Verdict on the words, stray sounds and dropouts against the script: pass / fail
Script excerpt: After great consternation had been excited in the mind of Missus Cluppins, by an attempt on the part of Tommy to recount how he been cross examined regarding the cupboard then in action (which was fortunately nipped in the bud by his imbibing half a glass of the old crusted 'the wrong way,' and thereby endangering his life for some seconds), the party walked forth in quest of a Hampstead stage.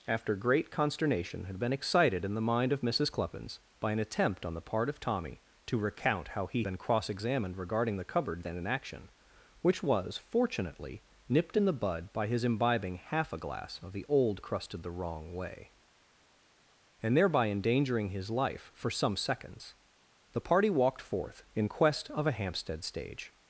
pass